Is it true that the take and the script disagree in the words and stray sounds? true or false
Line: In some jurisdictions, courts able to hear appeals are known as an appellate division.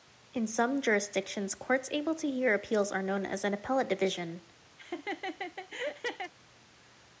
true